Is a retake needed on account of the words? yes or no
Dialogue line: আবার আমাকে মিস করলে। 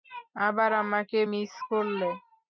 no